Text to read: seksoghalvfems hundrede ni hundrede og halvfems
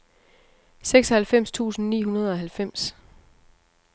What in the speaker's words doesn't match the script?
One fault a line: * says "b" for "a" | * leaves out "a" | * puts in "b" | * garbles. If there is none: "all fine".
* says "tusind" for "hundrede"